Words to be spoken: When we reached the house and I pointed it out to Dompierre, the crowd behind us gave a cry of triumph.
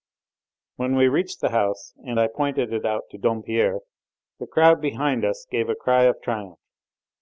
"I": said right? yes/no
yes